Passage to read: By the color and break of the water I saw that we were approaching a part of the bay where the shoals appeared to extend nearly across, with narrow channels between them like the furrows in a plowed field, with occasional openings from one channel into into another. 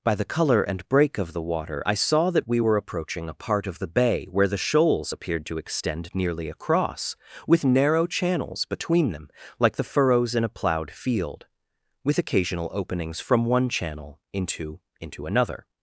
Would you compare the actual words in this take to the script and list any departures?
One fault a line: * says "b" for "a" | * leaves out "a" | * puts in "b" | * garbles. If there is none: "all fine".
all fine